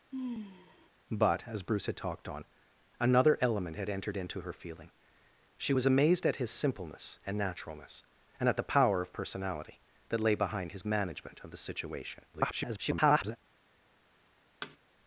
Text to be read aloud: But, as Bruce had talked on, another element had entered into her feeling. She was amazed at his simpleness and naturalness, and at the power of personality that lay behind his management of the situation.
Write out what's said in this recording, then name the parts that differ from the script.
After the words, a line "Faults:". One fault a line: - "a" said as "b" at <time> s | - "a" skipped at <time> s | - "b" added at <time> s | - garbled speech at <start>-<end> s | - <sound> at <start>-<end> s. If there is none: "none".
But, as Bruce had talked on, another element had entered into her feeling. She was amazed at his simpleness and naturalness, and at the power of personality that lay behind his management of the situation. [garbled]
Faults:
- sigh at 0.1-0.9 s
- garbled speech at 12.3-13.4 s
- thud at 14.6-14.8 s